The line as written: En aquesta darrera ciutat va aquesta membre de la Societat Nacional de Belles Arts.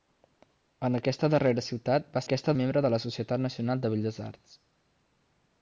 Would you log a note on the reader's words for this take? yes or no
no